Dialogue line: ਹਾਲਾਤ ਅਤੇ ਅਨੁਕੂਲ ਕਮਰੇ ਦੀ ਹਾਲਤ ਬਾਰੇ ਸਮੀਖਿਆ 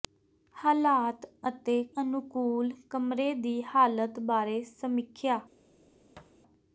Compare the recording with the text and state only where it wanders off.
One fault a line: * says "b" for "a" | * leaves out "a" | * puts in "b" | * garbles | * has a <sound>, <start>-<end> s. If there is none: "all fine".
* has a thud, 6.2-6.4 s